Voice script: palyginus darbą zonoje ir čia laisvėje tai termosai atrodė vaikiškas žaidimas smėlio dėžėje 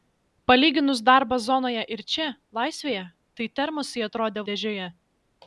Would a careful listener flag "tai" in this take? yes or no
no